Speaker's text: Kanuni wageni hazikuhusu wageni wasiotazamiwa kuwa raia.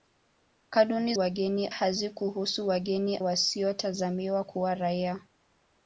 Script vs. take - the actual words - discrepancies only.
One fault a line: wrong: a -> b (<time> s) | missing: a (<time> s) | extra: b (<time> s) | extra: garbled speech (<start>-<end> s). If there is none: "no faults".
no faults